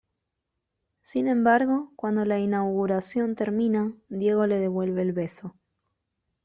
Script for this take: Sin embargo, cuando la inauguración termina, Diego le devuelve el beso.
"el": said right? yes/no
yes